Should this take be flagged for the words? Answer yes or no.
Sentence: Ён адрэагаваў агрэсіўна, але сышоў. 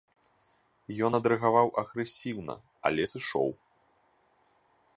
no